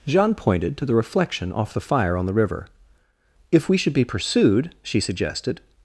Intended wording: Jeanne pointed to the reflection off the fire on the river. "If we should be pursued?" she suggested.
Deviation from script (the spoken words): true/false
false